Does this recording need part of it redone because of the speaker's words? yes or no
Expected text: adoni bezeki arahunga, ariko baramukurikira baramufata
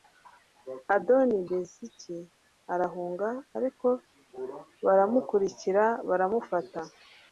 no